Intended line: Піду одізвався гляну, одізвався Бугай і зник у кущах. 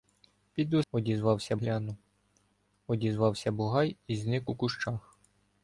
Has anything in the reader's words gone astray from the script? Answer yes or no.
no